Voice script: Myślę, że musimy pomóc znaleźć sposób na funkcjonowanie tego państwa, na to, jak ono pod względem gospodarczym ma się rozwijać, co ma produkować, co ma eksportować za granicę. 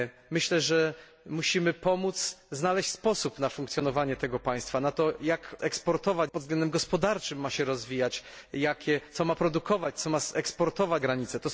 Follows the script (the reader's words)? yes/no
no